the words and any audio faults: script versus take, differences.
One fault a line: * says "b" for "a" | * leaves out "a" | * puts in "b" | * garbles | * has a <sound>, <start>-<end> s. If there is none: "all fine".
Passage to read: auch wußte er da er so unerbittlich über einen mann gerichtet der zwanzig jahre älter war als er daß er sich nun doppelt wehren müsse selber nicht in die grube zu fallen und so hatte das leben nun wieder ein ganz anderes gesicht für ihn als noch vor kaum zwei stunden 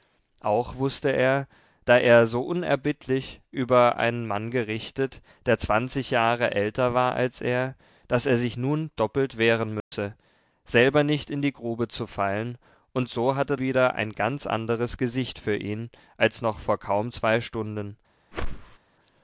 * has a dropout, 9.8-9.9 s
* leaves out "das leben nun"
* has a whoosh, 18.3-18.8 s